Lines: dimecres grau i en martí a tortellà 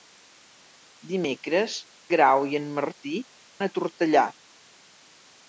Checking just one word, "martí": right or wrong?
right